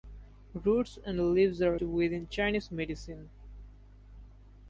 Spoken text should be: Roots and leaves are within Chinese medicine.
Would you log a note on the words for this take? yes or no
no